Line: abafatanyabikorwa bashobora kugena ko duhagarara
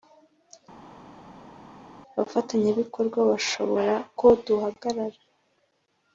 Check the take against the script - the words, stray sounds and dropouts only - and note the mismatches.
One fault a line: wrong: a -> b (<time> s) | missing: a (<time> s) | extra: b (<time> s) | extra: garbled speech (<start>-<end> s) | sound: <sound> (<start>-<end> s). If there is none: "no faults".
missing: kugena (3.9 s)